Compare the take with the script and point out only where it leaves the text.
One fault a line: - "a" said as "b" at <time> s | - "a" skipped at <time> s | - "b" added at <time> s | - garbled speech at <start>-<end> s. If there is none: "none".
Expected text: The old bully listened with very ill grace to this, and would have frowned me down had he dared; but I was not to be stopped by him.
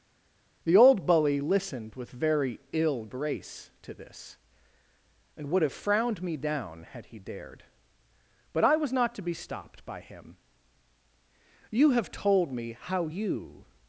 - "You have told me how you" added at 11.7 s